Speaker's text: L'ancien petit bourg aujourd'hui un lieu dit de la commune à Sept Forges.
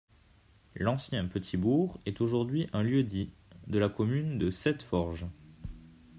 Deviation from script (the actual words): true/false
true